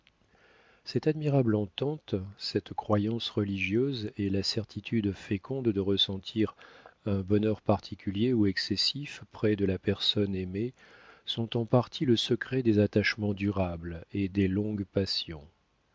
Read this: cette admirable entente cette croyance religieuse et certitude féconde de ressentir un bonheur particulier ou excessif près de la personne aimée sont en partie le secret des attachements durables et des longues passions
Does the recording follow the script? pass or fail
fail